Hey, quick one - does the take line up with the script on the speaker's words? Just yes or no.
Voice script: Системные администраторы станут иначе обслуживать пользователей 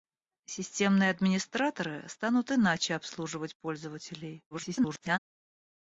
no